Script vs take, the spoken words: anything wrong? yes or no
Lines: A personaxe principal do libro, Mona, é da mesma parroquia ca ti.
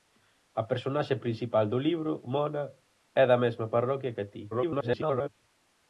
yes